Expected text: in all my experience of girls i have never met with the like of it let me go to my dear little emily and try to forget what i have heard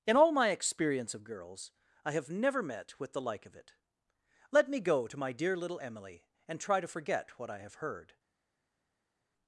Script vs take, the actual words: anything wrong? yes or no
no